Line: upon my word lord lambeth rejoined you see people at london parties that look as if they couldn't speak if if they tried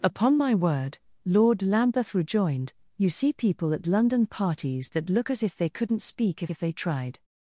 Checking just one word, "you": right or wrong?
right